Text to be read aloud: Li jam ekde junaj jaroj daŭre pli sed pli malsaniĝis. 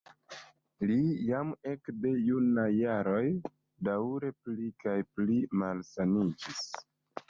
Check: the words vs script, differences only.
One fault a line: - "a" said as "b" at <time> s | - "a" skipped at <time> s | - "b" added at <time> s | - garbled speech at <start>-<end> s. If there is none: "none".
- "sed" said as "kaj" at 4.8 s